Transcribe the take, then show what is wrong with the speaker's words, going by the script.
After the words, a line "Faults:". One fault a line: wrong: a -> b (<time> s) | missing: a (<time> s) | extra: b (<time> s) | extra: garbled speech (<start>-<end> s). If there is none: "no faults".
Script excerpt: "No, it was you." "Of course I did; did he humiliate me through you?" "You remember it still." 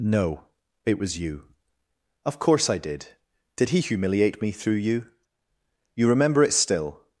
"No, it was you." "Of course I did; did he humiliate me through you?" "You remember it still."
Faults:
no faults